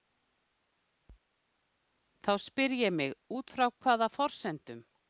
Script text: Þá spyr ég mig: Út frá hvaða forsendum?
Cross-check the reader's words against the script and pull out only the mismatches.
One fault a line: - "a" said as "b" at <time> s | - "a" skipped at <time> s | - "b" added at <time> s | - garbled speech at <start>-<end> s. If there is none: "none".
none